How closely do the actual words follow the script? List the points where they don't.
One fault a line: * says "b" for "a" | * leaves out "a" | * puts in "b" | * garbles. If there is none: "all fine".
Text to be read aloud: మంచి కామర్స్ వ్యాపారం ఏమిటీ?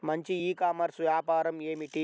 * puts in "ఈ"